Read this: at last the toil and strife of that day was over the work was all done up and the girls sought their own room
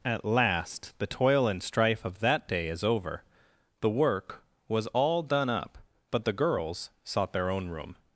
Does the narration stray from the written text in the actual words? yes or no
yes